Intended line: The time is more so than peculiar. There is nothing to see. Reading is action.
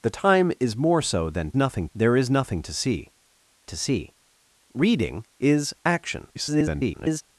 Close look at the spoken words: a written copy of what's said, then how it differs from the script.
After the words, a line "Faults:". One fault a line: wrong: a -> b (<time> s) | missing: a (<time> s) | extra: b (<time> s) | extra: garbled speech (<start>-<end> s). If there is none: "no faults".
The time is more so than nothing. There is nothing to see to see. Reading is action. [garbled]
Faults:
wrong: peculiar -> nothing (1.6 s)
extra: to see (3.7 s)
extra: garbled speech (6.3-7.2 s)